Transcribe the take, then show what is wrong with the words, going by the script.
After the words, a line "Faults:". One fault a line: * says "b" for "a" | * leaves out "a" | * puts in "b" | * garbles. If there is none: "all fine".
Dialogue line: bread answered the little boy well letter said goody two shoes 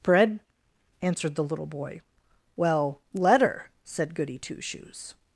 bread answered the little boy well letter said goody two shoes
Faults:
all fine